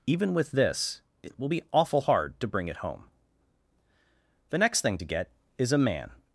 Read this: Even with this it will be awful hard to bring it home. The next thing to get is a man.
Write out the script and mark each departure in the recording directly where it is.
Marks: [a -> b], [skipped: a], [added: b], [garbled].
Even with this it will be awful hard to bring it home. The next thing to get is a man.